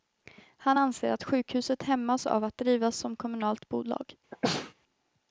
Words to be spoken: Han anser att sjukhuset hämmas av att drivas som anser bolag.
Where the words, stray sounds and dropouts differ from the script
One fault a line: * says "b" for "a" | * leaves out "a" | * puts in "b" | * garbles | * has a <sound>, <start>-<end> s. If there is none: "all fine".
* says "kommunalt" for "anser"
* has a sneeze, 4.3-4.7 s